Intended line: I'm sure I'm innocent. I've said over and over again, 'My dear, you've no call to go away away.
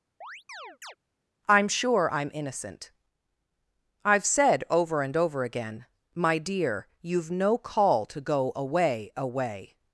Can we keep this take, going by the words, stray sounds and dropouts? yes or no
no